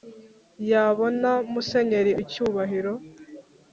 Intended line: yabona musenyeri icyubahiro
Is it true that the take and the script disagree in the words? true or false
false